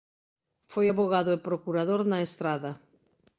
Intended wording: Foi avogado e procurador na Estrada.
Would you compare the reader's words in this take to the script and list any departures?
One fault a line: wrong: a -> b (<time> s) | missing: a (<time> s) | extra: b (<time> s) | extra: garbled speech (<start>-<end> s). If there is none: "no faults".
no faults